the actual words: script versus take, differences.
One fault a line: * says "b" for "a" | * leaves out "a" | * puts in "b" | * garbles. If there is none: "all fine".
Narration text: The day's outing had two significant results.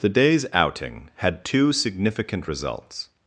all fine